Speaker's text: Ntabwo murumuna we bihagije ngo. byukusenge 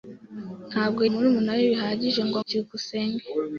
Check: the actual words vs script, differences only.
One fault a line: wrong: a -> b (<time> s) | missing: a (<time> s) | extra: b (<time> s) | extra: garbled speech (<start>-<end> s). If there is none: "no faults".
no faults